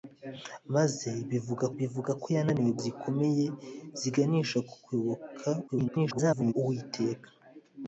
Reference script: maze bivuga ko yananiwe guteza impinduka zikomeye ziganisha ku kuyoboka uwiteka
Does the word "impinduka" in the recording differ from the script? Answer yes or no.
yes